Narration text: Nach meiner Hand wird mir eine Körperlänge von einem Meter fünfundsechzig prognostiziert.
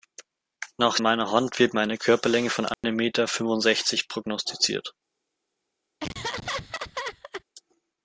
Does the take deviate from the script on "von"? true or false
false